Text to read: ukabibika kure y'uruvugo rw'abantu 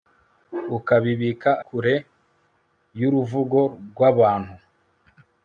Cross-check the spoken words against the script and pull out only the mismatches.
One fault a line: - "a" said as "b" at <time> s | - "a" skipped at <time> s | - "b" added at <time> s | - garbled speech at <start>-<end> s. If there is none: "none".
none